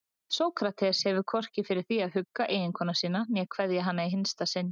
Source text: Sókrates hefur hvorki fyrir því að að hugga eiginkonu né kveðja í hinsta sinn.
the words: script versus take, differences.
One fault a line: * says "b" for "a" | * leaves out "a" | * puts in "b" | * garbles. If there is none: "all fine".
* leaves out "að"
* puts in "sína"
* puts in "hana"